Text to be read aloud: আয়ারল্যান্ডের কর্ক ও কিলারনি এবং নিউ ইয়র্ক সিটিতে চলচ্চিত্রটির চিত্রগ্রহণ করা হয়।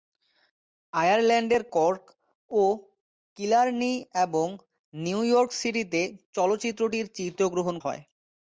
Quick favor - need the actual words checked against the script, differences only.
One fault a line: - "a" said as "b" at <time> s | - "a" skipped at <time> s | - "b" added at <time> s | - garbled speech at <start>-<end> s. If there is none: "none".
- "করা" skipped at 7.7 s